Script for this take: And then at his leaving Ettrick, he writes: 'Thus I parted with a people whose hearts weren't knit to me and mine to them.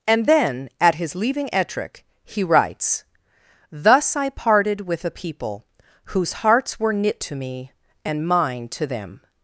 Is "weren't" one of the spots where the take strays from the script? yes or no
yes